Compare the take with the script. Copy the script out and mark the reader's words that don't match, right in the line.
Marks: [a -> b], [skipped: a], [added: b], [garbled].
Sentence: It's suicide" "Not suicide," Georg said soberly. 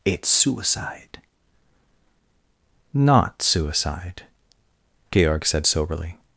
It's suicide" "Not suicide," Georg said soberly.